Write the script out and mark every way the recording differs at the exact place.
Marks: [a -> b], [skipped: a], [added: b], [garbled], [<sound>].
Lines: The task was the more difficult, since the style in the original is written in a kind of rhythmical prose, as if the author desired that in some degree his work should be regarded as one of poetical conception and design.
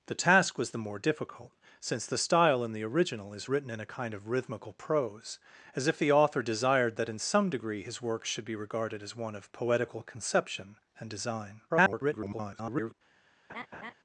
The task was the more difficult, since the style in the original is written in a kind of rhythmical prose, as if the author desired that in some degree his work should be regarded as one of poetical conception and design. [garbled] [laugh]